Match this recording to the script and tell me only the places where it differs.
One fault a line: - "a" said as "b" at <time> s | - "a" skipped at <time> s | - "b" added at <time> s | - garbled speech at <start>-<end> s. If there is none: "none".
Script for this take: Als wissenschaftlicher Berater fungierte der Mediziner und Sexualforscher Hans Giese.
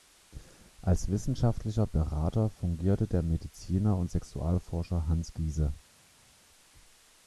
none